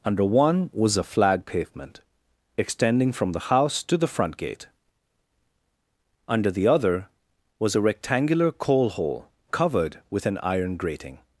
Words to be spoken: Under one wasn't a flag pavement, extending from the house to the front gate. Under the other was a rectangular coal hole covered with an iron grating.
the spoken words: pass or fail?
fail